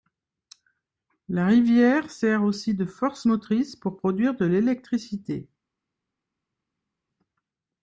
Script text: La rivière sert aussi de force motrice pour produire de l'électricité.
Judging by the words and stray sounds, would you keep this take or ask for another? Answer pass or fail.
pass